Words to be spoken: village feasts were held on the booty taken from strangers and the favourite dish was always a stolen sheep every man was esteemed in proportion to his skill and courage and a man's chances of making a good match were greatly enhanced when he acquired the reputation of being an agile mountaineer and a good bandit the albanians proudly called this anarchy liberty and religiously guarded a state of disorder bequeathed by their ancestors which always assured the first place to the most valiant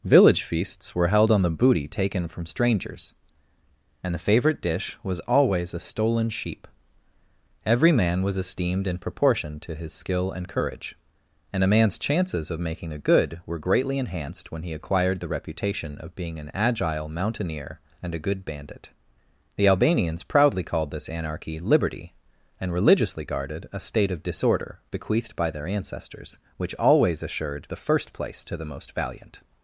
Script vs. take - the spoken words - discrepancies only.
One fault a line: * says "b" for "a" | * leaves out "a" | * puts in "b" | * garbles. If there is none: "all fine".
* leaves out "match"